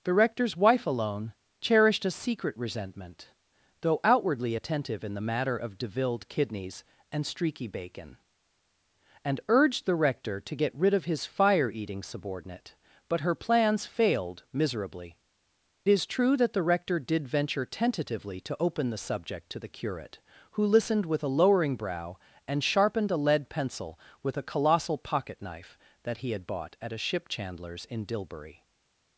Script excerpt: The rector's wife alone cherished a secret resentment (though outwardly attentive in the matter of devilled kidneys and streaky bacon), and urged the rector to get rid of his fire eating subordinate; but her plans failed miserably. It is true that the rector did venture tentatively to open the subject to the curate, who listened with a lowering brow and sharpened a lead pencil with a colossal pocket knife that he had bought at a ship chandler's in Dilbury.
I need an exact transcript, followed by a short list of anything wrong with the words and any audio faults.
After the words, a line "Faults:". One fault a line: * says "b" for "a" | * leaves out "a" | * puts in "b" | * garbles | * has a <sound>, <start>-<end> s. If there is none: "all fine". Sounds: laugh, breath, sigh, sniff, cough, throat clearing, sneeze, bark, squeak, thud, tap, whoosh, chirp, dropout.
The rector's wife alone cherished a secret resentment (though outwardly attentive in the matter of devilled kidneys and streaky bacon), and urged the rector to get rid of his fire eating subordinate; but her plans failed miserably. Is true that the rector did venture tentatively to open the subject to the curate, who listened with a lowering brow and sharpened a lead pencil with a colossal pocket knife that he had bought at a ship chandler's in Dilbury.
Faults:
* leaves out "It"